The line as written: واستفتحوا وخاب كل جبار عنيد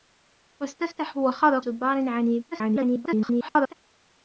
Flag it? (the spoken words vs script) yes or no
yes